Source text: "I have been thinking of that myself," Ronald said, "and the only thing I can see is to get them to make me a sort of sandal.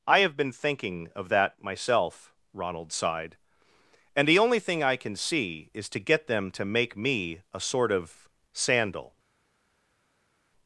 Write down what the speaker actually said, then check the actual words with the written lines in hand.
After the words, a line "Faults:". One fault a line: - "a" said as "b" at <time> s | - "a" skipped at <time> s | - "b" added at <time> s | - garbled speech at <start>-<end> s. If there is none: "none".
"I have been thinking of that myself," Ronald sighed, "and the only thing I can see is to get them to make me a sort of sandal.
Faults:
- "said" said as "sighed" at 2.9 s